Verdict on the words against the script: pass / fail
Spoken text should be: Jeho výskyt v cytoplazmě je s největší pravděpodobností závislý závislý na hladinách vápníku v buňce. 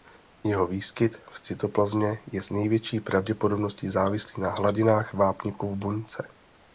fail